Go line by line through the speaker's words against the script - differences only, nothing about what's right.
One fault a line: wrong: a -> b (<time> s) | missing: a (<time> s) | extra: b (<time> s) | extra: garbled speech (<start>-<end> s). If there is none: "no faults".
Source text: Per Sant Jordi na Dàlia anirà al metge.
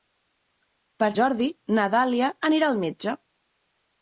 missing: Sant (1.1 s)